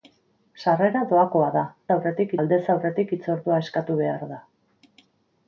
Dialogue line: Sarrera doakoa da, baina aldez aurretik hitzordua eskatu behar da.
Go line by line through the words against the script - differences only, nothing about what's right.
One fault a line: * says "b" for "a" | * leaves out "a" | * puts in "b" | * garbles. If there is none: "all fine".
* says "aurretik" for "baina"